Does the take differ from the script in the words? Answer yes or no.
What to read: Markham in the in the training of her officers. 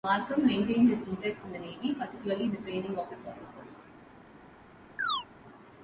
yes